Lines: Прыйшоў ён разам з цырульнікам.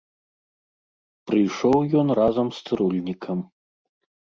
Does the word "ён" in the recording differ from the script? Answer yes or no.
no